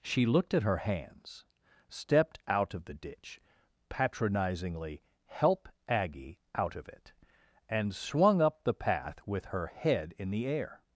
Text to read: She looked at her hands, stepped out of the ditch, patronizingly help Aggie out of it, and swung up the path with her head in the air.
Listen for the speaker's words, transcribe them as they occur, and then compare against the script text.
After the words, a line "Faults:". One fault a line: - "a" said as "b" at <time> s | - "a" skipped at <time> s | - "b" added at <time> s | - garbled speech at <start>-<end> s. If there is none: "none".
She looked at her hands, stepped out of the ditch, patronizingly help Aggie out of it, and swung up the path with her head in the air.
Faults:
none